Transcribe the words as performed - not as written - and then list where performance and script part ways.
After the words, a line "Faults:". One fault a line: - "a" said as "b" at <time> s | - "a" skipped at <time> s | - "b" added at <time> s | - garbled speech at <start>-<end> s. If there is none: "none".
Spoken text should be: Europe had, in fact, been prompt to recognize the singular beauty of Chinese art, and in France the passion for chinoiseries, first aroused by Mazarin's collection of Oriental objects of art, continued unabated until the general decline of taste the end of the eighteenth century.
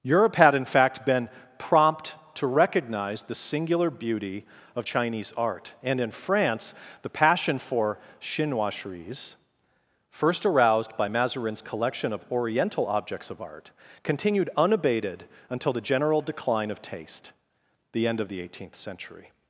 Europe had, in fact, been prompt to recognize the singular beauty of Chinese art, and in France the passion for chinoiseries, first aroused by Mazarin's collection of Oriental objects of art, continued unabated until the general decline of taste the end of the eighteenth century.
Faults:
none